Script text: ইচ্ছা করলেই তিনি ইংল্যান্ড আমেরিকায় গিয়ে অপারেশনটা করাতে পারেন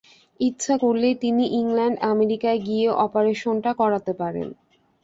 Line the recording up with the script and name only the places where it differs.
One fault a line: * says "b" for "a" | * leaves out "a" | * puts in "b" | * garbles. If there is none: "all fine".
all fine